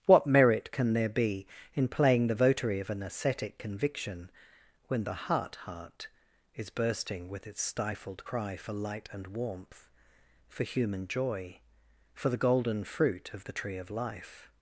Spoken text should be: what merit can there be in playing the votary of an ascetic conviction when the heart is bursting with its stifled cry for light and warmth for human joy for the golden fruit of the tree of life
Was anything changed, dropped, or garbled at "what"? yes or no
no